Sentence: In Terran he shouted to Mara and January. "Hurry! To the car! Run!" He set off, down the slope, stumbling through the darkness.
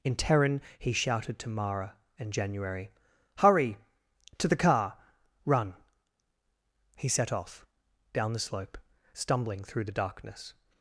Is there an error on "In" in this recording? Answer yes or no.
no